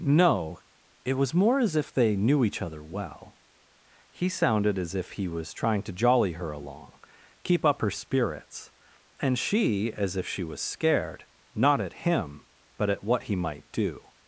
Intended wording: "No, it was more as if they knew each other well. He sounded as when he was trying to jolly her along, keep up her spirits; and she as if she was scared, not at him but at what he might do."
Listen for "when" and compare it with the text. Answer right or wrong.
wrong